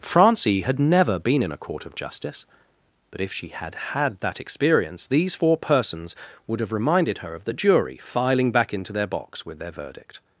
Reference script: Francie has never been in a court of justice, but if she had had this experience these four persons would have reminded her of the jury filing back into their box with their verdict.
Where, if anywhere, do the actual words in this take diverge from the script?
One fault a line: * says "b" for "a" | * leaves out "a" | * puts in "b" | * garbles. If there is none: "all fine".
* says "had" for "has"
* says "that" for "this"